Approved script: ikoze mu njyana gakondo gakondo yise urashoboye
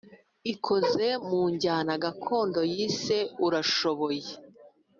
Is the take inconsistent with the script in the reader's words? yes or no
yes